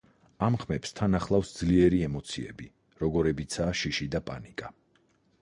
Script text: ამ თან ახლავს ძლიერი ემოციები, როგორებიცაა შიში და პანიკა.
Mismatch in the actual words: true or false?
true